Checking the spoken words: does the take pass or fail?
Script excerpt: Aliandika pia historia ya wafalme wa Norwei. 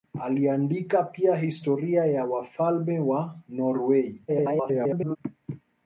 fail